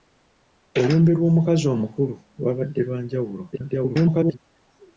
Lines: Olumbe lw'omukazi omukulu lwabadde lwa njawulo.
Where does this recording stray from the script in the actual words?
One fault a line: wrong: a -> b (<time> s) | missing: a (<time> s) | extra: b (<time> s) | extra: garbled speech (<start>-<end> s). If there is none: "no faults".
extra: garbled speech (3.5-4.4 s)